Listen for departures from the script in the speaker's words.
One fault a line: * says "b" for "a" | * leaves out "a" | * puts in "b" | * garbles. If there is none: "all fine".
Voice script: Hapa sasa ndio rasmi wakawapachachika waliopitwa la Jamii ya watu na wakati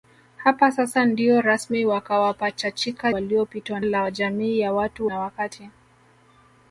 all fine